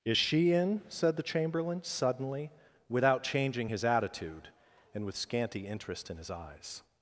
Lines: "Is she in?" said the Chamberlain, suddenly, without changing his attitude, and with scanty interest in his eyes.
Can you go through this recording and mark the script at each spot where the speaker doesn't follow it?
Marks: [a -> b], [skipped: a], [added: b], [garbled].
"Is she in?" said the Chamberlain, suddenly, without changing his attitude, and with scanty interest in his eyes.